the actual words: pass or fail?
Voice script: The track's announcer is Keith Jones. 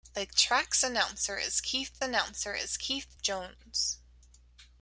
fail